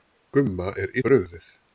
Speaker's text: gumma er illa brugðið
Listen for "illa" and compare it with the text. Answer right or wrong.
wrong